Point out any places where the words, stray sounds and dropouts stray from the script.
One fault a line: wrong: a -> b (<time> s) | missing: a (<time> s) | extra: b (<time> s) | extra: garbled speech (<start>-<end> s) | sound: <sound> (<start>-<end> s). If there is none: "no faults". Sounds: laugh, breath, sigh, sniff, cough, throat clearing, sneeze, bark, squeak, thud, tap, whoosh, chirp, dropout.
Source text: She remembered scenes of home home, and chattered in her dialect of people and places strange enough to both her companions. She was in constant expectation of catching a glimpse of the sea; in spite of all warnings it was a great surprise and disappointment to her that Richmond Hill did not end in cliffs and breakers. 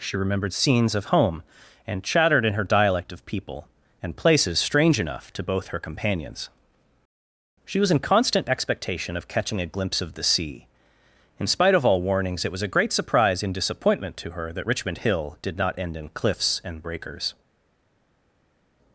missing: home (1.4 s)